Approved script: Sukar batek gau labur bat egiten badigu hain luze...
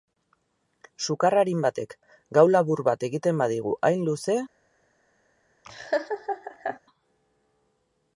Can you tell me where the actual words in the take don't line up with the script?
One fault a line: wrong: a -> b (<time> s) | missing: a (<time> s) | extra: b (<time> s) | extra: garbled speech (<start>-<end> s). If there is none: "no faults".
extra: arin (1.4 s)